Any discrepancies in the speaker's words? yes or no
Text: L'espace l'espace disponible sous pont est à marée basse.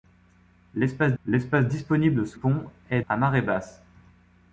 no